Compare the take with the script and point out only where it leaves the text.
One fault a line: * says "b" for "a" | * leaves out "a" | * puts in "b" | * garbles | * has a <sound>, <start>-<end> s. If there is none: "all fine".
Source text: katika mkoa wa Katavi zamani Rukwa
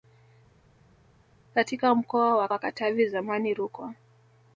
* puts in "wa"